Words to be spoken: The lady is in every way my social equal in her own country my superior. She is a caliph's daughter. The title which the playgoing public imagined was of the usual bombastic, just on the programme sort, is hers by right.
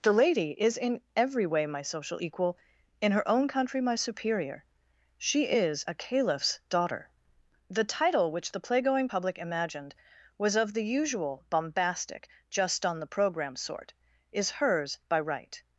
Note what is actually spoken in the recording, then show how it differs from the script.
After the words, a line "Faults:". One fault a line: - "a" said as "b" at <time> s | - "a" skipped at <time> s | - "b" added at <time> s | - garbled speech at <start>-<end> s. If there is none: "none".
The lady is in every way my social equal in her own country my superior. She is a caliph's daughter. The title which the playgoing public imagined was of the usual bombastic, just on the programme sort, is hers by right.
Faults:
none